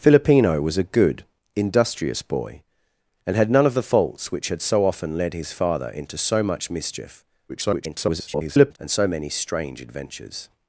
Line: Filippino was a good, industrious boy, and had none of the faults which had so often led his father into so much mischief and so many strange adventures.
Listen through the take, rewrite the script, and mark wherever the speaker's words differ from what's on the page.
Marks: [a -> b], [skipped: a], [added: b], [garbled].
Filippino was a good, industrious boy, and had none of the faults which had so often led his father into so much mischief [garbled] and so many strange adventures.